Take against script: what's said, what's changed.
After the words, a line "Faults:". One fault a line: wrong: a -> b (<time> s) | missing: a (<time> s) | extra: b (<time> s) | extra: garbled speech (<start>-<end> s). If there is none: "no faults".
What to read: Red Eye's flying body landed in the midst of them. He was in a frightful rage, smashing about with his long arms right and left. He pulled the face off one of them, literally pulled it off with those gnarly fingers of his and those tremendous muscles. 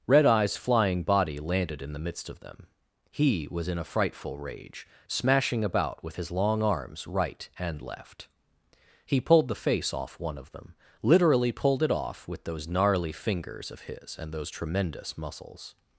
Red Eye's flying body landed in the midst of them. He was in a frightful rage, smashing about with his long arms right and left. He pulled the face off one of them, literally pulled it off with those gnarly fingers of his and those tremendous muscles.
Faults:
no faults